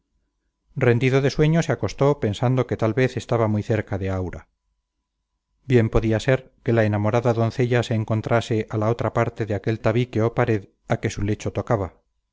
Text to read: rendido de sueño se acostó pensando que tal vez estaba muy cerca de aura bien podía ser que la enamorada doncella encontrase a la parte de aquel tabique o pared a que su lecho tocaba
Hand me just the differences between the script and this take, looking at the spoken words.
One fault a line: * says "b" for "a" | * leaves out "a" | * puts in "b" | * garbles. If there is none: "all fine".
* puts in "se"
* puts in "otra"